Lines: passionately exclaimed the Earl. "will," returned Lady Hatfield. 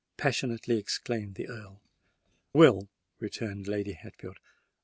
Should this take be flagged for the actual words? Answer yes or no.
no